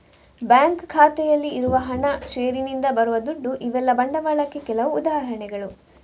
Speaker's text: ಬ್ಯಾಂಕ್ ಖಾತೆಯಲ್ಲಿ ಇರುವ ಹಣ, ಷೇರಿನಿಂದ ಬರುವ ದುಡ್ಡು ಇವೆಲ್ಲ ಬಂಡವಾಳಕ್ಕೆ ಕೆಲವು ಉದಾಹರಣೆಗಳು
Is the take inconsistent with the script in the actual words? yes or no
no